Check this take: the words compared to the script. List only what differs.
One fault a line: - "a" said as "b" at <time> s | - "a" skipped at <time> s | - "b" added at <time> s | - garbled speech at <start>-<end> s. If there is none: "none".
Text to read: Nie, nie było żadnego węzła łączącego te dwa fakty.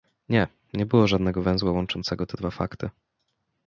none